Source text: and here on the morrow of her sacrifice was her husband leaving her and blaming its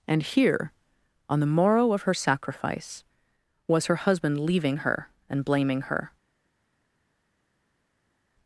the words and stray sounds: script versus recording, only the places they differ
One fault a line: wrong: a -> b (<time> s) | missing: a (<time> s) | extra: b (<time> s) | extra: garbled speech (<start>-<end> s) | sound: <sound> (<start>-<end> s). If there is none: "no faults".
wrong: its -> her (5.8 s)